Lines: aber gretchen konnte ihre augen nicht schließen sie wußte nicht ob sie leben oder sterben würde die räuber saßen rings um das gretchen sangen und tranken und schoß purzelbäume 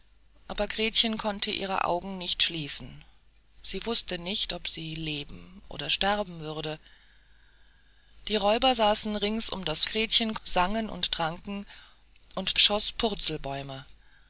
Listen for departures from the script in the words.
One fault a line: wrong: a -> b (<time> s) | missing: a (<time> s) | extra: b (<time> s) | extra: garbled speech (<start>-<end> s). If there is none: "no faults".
no faults